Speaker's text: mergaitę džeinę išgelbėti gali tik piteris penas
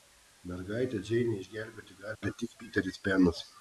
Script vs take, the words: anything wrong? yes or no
no